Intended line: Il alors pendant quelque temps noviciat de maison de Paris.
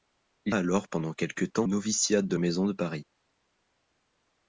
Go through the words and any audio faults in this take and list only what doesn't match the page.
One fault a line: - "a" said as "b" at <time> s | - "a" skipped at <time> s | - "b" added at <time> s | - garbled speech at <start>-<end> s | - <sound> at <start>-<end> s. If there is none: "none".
none